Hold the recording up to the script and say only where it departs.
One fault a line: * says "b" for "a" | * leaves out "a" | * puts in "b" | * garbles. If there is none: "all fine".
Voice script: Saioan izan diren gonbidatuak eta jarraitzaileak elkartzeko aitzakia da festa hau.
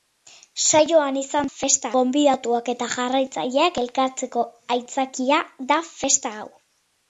* says "festa" for "diren"